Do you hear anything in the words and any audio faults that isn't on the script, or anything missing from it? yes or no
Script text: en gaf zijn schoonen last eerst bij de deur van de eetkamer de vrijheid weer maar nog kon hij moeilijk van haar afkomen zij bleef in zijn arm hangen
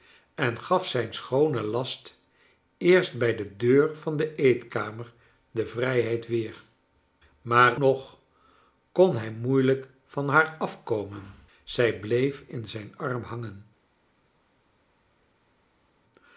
no